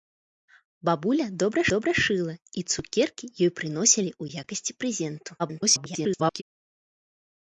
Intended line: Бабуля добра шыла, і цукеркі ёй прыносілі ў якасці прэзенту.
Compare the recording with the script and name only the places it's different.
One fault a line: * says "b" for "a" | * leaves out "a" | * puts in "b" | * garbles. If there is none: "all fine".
* puts in "добра"
* garbles